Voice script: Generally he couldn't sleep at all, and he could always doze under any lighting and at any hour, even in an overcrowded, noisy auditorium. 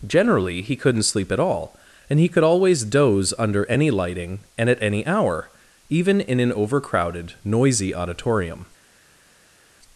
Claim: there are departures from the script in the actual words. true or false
false